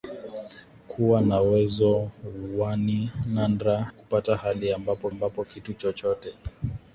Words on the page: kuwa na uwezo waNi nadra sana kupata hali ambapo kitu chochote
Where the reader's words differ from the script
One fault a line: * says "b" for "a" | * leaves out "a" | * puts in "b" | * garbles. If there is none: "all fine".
* leaves out "sana"
* puts in "ambapo"